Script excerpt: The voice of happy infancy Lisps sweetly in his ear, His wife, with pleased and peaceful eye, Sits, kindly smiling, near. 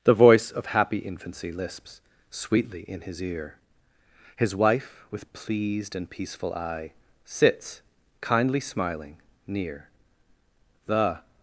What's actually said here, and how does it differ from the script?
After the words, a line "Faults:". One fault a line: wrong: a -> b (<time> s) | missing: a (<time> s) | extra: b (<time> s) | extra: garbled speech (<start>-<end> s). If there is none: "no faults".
The voice of happy infancy Lisps sweetly in his ear, His wife, with pleased and peaceful eye, Sits, kindly smiling, near. The
Faults:
extra: The (10.9 s)